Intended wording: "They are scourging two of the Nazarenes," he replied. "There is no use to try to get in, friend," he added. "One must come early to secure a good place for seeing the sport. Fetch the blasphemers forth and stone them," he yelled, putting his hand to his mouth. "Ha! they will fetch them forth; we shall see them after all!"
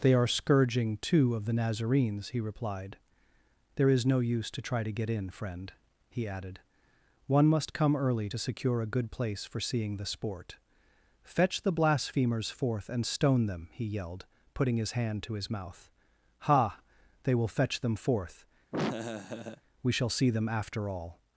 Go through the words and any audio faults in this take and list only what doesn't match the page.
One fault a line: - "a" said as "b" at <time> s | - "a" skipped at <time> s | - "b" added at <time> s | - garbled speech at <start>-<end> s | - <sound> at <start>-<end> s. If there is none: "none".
- laugh at 18.7-19.6 s